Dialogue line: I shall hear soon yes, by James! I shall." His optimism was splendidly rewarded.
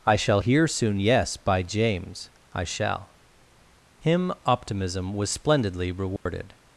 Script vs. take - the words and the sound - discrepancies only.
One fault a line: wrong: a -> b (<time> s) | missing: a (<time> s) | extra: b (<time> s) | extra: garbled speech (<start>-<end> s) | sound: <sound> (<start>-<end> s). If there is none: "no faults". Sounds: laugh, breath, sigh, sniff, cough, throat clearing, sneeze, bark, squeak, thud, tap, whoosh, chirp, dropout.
wrong: His -> Him (4.0 s)
sound: dropout (6.2-6.3 s)